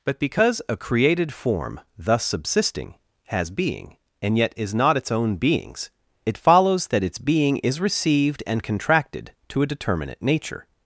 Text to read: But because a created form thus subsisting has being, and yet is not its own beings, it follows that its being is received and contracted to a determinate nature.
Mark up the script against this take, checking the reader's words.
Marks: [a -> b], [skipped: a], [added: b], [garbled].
But because a created form thus subsisting has being, and yet is not its own beings, it follows that its being is received and contracted to a determinate nature.